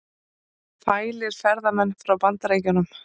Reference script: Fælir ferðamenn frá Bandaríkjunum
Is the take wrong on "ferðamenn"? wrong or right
right